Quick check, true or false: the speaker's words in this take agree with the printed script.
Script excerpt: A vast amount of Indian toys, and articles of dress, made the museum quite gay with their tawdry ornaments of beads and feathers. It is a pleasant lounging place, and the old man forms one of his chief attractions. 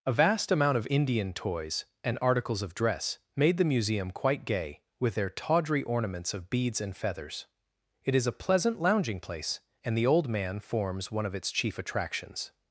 false